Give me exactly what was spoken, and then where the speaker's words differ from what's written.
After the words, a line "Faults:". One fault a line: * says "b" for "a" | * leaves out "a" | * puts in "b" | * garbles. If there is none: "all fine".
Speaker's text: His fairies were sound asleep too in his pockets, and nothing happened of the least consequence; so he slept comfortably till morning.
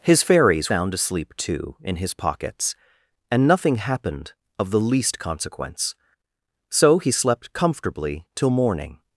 His fairies sound asleep too in his pockets, and nothing happened of the least consequence; so he slept comfortably till morning.
Faults:
* leaves out "were"